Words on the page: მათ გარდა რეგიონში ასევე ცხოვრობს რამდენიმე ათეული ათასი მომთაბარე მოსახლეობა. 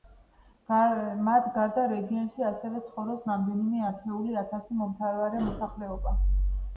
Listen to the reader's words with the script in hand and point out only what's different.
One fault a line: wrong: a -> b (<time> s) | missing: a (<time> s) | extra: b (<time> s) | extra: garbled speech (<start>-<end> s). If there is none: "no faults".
no faults